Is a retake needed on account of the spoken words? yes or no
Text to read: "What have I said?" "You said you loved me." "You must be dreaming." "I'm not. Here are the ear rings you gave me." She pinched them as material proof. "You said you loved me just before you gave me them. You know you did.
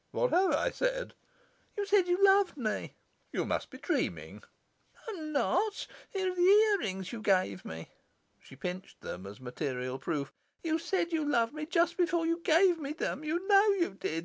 no